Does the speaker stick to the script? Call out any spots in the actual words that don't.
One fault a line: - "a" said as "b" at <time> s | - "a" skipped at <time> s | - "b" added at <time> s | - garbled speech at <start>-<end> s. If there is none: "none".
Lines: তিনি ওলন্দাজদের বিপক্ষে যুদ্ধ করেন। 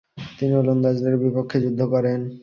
none